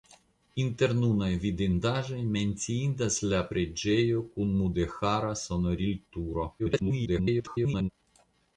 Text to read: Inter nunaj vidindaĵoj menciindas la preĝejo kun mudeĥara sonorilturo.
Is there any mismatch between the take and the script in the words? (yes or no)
yes